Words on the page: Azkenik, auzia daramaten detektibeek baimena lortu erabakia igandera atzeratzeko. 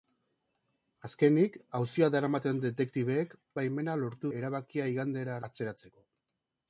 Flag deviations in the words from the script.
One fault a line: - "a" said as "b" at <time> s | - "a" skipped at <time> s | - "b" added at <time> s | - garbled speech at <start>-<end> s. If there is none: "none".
none